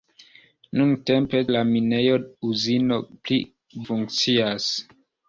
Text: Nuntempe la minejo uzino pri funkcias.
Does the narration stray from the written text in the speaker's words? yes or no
no